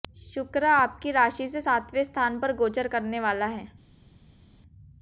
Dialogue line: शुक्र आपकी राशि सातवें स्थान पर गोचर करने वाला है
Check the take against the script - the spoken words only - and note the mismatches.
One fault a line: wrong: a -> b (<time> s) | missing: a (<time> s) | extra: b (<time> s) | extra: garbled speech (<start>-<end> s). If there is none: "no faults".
extra: से (1.5 s)